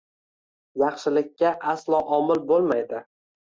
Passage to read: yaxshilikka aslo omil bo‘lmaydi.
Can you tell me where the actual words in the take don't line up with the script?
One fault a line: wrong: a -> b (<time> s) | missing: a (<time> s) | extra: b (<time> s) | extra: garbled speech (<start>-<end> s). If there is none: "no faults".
no faults